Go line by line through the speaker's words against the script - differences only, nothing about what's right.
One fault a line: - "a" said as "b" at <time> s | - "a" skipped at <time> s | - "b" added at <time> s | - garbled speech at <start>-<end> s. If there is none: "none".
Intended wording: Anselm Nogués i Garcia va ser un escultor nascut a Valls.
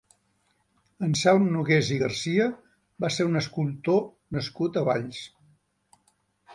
none